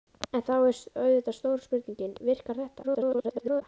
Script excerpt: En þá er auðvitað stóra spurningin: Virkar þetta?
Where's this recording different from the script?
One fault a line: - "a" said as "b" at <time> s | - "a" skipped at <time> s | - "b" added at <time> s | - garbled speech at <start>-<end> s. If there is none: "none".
- garbled speech at 2.8-3.6 s